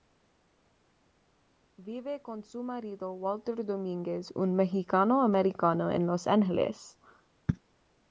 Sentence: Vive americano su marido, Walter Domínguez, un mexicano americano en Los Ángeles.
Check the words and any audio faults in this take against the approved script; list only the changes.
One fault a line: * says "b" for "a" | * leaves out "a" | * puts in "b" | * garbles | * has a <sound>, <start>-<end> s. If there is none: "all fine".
* says "con" for "americano"